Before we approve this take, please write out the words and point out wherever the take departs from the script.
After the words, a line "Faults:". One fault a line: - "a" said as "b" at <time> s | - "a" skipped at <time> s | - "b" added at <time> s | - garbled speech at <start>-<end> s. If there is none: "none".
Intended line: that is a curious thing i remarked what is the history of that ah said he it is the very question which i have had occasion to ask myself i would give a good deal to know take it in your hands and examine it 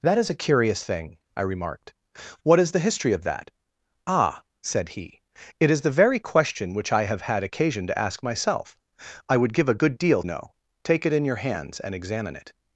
that is a curious thing i remarked what is the history of that ah said he it is the very question which i have had occasion to ask myself i would give a good deal know take it in your hands and examine it
Faults:
- "to" skipped at 10.2 s